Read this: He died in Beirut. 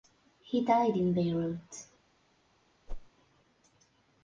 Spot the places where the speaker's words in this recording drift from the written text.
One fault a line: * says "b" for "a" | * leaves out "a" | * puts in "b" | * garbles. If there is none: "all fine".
all fine